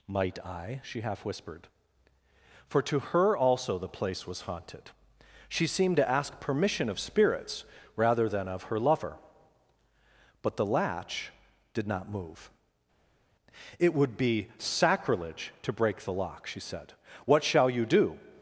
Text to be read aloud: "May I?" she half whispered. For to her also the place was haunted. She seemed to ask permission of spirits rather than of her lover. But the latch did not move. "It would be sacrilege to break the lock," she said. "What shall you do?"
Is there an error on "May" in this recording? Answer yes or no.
yes